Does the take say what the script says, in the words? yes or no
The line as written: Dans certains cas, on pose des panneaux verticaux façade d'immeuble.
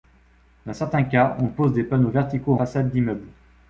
yes